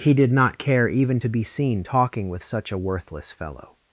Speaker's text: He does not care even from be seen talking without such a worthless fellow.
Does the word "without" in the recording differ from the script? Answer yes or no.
yes